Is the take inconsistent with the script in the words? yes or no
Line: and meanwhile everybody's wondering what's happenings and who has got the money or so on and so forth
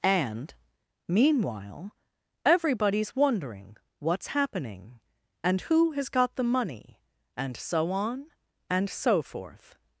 yes